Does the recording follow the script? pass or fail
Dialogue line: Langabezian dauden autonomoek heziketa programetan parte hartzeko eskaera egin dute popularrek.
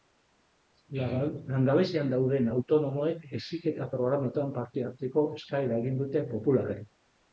pass